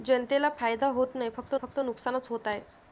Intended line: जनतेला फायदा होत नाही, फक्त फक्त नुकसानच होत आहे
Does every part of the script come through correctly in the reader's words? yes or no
yes